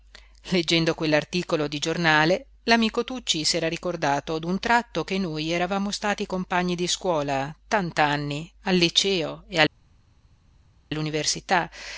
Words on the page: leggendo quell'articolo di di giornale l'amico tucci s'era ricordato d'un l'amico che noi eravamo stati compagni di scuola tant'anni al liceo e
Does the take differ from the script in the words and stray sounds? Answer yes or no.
yes